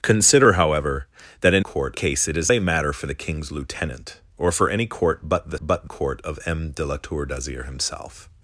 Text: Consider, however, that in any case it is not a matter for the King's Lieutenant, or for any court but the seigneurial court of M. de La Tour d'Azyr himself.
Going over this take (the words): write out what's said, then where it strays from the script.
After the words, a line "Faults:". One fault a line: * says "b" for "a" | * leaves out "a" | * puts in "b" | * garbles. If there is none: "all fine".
Consider, however, that in court case it is a matter for the King's Lieutenant, or for any court but the but court of M. de La Tour d'Azyr himself.
Faults:
* says "court" for "any"
* leaves out "not"
* says "but" for "seigneurial"